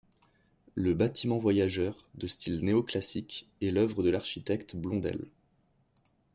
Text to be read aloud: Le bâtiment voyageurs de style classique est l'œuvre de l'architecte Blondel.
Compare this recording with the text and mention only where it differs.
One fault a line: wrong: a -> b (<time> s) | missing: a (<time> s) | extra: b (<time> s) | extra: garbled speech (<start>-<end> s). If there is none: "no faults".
extra: néo (2.6 s)